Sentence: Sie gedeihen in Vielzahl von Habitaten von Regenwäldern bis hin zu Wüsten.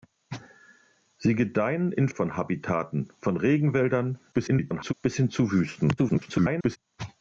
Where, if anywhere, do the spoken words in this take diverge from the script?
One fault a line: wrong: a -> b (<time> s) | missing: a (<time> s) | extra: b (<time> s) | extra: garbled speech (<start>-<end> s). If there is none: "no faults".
missing: Vielzahl (2.1 s)
extra: garbled speech (4.3-4.9 s)
extra: garbled speech (6.0-6.8 s)